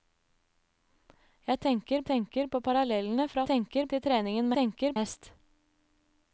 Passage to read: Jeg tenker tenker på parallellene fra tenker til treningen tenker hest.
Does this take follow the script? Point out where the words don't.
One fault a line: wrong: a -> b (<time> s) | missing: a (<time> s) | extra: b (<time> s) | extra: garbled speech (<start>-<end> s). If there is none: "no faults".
no faults